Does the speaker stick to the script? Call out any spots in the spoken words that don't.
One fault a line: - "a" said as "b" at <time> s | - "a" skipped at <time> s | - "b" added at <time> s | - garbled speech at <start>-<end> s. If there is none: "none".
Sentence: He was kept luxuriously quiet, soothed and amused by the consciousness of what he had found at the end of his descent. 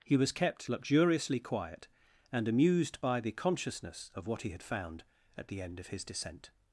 - "soothed" skipped at 1.9 s